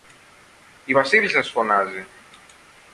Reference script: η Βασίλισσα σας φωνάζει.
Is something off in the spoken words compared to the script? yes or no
no